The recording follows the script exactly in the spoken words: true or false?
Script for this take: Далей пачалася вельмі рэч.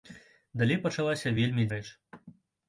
true